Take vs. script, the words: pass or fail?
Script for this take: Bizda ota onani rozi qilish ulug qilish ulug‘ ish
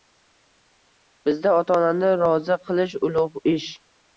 fail